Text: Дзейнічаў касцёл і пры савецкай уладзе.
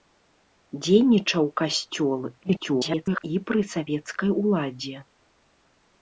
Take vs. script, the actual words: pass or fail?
fail